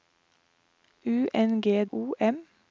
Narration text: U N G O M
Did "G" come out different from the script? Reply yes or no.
no